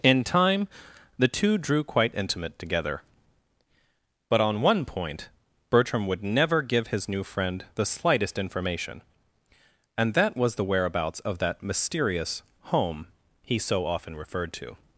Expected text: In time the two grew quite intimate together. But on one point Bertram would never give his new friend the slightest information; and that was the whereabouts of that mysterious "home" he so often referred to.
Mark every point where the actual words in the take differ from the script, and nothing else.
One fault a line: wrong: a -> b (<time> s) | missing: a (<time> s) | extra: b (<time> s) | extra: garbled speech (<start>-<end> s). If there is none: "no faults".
wrong: grew -> drew (1.6 s)